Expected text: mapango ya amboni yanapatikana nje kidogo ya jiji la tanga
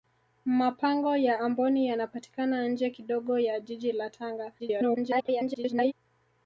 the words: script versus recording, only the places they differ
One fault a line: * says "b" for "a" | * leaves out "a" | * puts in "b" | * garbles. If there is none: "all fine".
* garbles